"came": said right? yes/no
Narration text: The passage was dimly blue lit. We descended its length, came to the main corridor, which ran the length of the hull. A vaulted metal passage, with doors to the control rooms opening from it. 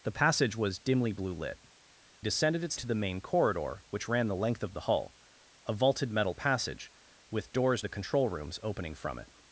no